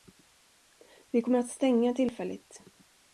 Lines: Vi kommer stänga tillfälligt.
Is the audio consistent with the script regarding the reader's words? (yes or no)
no